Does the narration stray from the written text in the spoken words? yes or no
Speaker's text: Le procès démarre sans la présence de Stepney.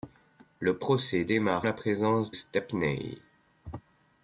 yes